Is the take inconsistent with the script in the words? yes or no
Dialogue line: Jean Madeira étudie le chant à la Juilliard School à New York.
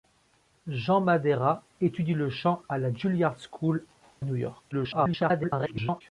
yes